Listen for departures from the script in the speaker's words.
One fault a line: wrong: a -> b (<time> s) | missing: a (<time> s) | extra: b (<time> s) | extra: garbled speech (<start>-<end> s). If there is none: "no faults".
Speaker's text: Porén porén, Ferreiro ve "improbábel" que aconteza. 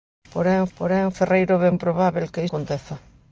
no faults